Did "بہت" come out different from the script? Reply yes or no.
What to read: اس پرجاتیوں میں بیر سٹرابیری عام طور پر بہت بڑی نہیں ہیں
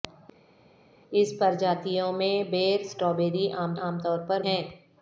yes